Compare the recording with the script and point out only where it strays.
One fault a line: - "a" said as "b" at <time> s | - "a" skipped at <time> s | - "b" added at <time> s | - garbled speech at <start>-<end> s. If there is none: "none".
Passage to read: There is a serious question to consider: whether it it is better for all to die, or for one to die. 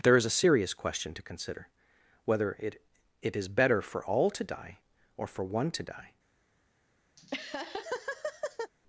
none